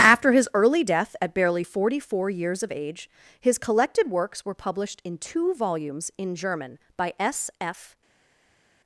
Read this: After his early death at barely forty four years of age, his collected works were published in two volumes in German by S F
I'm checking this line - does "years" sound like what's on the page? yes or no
yes